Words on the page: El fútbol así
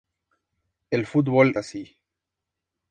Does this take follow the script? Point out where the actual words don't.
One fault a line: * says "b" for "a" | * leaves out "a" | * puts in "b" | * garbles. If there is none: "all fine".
all fine